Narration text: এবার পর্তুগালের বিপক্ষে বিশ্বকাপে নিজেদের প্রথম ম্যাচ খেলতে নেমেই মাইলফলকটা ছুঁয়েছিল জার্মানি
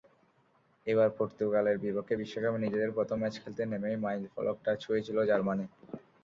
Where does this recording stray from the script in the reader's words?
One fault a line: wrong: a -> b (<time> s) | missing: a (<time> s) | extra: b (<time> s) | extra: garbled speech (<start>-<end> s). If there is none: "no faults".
no faults